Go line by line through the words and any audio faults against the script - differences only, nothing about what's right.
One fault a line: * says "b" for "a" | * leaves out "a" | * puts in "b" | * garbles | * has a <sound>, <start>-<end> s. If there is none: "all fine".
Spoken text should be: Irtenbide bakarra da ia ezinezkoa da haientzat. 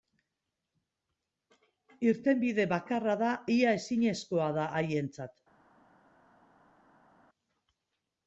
all fine